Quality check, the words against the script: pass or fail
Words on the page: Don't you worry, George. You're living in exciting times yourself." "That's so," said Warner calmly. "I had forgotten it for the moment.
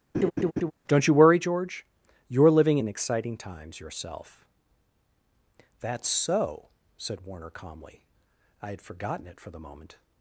pass